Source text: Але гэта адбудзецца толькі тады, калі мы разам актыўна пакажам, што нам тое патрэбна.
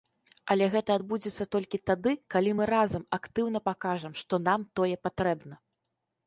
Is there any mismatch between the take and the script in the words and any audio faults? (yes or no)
no